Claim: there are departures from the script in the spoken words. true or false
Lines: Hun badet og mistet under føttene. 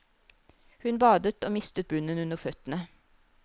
true